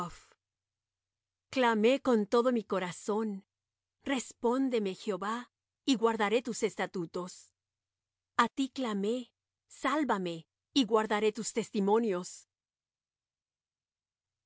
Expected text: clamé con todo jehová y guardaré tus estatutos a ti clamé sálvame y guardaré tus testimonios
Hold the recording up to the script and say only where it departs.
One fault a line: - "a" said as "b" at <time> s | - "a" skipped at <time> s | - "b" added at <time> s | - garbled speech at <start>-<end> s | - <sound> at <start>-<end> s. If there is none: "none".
- "mi corazón respóndeme" added at 2.5 s